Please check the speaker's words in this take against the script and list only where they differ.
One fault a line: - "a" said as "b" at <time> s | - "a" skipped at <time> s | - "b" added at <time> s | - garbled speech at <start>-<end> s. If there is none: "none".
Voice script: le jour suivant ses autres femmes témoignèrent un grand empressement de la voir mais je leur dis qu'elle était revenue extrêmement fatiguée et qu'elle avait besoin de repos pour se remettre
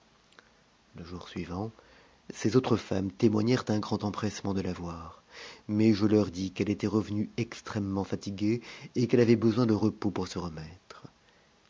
none